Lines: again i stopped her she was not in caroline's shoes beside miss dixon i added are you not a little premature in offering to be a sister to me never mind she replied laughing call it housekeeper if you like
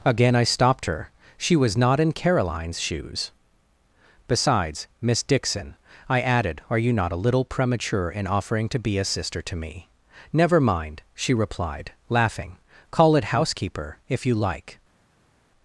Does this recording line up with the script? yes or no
no